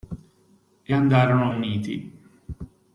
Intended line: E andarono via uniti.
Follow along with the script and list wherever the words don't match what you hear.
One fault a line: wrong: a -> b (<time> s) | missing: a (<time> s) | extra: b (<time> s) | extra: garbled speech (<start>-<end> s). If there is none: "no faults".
missing: via (1.5 s)